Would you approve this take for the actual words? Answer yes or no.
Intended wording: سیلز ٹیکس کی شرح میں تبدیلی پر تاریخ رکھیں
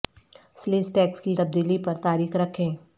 no